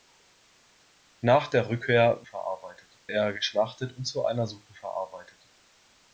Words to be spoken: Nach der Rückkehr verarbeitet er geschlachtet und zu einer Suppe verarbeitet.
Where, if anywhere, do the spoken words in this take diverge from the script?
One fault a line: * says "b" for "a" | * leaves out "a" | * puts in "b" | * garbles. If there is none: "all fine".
all fine